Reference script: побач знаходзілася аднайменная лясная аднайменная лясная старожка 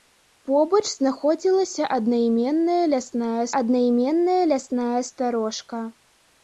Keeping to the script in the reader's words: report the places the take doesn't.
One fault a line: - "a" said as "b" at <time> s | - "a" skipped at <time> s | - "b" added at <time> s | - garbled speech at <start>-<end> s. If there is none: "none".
none